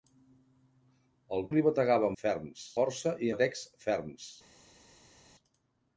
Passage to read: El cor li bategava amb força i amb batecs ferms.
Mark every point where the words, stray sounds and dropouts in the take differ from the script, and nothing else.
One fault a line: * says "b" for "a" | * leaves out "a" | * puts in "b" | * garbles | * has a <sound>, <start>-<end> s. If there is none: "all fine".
* leaves out "cor"
* says "ferms" for "amb"
* leaves out "amb"